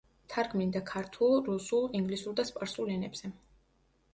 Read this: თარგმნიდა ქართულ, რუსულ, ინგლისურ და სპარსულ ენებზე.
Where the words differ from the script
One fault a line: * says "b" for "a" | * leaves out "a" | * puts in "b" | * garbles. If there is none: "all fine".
all fine